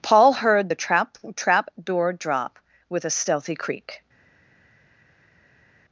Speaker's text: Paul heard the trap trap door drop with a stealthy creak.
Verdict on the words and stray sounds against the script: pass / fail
pass